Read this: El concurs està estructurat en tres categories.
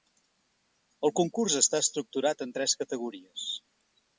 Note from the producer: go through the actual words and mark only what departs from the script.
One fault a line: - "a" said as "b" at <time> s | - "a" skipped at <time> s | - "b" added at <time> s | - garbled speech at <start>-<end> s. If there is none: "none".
none